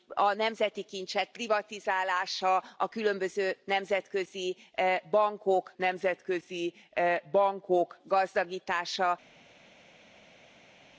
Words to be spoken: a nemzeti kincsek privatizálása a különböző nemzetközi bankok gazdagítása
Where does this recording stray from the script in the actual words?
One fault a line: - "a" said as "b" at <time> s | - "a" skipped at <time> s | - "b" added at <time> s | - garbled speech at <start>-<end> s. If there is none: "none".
- "nemzetközi bankok" added at 5.8 s